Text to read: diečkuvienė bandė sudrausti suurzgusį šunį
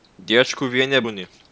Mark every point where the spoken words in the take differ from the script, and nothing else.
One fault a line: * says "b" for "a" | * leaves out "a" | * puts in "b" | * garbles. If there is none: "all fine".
* leaves out "bandė sudrausti suurzgusį"